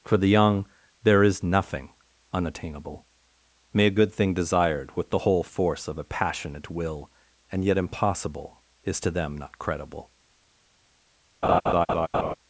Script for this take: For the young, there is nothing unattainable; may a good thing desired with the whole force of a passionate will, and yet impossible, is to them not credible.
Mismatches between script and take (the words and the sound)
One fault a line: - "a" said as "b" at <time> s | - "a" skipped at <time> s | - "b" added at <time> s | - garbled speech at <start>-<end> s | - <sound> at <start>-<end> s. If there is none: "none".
- laugh at 11.4-12.3 s